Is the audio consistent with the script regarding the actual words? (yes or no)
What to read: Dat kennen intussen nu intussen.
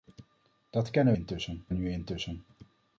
yes